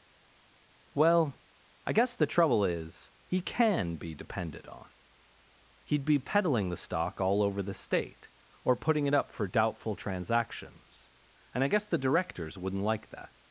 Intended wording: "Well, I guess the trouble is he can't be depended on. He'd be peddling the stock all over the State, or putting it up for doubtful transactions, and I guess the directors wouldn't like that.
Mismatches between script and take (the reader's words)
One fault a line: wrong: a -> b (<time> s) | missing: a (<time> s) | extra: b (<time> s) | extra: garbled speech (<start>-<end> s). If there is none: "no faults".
wrong: can't -> can (3.4 s)